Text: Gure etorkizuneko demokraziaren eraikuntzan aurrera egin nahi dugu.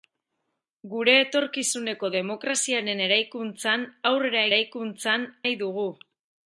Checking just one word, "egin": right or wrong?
wrong